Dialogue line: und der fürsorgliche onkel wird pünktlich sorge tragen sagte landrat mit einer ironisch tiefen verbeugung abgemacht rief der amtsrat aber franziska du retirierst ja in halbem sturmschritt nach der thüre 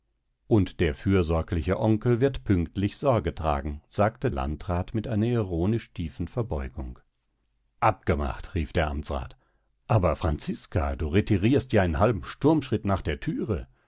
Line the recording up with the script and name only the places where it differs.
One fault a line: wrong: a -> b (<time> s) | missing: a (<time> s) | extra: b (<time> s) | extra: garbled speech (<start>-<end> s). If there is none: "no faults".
no faults